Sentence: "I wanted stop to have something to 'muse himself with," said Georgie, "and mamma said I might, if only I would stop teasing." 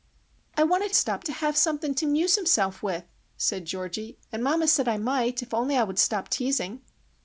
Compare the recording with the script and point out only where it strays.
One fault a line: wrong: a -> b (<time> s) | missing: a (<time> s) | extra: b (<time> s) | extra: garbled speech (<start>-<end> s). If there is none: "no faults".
no faults